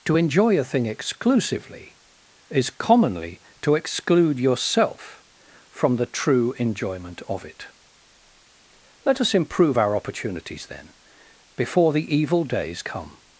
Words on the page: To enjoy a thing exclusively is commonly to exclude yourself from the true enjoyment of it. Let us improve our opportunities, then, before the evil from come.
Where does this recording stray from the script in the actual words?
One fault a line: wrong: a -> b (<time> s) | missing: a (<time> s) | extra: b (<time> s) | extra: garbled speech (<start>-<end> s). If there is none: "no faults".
wrong: from -> days (12.4 s)